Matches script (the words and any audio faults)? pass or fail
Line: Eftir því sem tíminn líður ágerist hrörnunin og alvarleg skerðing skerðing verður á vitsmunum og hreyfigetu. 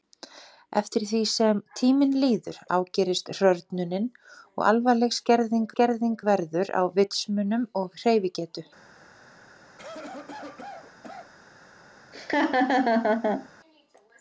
fail